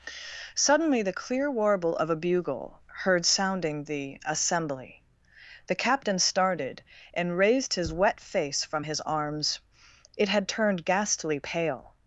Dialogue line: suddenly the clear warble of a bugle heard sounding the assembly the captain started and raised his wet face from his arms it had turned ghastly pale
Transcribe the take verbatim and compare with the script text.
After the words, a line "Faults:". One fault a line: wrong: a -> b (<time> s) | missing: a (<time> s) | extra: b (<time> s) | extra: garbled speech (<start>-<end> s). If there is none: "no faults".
suddenly the clear warble of a bugle heard sounding the assembly the captain started and raised his wet face from his arms it had turned ghastly pale
Faults:
no faults